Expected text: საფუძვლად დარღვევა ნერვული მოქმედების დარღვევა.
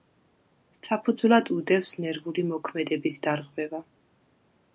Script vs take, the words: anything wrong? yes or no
yes